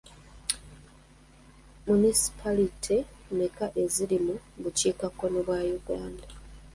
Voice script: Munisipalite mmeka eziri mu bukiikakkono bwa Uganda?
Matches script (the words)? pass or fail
pass